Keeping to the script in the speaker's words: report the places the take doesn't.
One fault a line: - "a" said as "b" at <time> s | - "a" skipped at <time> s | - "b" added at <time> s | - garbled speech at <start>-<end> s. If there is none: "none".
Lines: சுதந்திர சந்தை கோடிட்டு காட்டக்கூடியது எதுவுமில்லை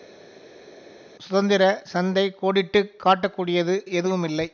none